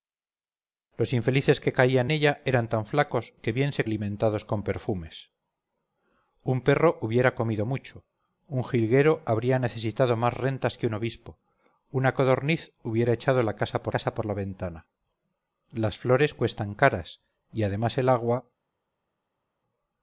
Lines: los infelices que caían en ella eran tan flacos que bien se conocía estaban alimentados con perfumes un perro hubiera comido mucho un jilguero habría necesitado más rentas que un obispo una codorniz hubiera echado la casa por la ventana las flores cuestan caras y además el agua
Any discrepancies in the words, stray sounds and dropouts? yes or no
yes